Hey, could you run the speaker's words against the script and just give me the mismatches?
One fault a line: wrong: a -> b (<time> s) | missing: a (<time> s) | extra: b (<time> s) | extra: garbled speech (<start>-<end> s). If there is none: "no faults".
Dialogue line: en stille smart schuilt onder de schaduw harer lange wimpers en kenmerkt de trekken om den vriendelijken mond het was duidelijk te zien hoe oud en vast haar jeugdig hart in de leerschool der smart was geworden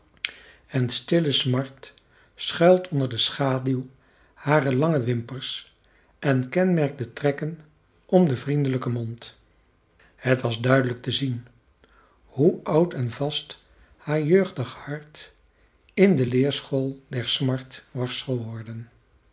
no faults